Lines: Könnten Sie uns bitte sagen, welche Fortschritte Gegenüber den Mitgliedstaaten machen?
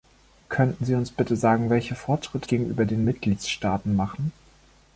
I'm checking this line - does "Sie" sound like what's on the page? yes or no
yes